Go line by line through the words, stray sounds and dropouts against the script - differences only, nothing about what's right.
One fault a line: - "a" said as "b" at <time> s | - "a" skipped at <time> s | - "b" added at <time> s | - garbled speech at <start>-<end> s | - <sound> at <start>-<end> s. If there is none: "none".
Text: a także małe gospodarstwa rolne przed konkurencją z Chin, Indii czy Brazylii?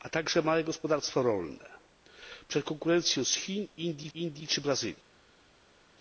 - "Indii" added at 4.1 s